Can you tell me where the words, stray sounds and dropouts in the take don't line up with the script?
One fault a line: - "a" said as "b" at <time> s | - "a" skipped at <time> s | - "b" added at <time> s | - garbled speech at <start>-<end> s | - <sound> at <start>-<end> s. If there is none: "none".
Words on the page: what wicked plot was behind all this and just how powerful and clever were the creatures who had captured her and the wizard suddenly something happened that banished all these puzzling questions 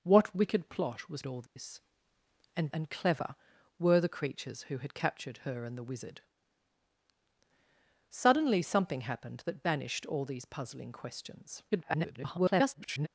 - "behind" skipped at 1.2 s
- dropout at 1.5-1.6 s
- "just how powerful" skipped at 2.7 s
- garbled speech at 11.7-13.1 s